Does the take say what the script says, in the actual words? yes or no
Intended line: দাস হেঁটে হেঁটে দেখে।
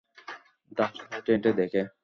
yes